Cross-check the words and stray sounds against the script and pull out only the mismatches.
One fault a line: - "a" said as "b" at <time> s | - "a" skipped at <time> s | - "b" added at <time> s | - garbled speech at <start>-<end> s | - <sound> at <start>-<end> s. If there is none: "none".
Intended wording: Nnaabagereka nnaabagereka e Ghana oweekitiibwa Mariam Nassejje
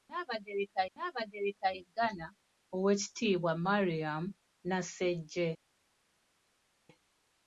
none